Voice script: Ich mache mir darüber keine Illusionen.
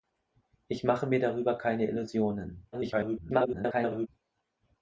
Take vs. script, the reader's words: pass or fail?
fail